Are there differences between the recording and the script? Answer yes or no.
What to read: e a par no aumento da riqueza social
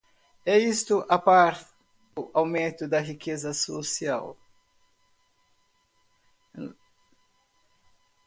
yes